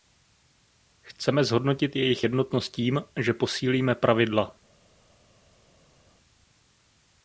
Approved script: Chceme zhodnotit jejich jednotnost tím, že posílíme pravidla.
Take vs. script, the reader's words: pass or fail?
pass